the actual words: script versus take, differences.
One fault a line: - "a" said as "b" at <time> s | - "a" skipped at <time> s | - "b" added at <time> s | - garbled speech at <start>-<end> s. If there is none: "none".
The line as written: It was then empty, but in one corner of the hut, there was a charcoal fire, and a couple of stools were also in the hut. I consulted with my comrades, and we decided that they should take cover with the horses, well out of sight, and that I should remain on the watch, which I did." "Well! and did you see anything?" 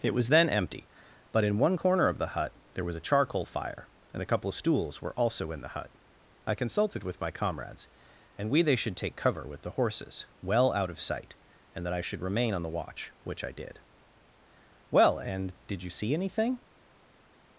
- "decided that" skipped at 8.6 s